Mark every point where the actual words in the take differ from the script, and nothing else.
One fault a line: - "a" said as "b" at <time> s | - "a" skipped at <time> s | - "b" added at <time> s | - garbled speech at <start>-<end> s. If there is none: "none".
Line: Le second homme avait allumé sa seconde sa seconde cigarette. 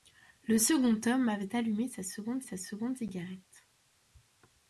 none